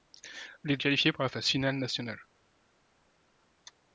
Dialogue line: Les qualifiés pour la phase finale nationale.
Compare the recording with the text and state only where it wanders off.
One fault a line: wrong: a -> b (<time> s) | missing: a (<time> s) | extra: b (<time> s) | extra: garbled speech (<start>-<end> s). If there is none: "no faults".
no faults